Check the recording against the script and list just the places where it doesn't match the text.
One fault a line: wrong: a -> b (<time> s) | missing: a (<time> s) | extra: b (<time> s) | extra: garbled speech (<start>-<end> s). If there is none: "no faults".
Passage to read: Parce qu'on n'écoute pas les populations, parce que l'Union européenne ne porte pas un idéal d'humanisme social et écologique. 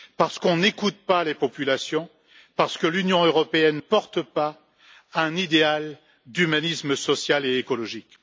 missing: ne (3.8 s)